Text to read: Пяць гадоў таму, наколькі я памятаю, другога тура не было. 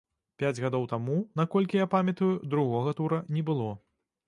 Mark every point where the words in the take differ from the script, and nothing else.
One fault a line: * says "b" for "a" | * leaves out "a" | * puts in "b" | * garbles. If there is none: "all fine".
all fine